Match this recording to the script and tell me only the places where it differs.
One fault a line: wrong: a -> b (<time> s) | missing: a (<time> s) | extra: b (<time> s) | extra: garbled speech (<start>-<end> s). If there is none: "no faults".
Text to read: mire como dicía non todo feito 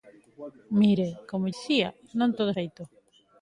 no faults